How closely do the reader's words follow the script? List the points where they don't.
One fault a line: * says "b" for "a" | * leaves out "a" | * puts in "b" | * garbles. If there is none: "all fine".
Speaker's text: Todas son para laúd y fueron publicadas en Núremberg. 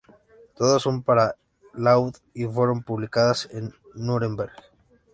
all fine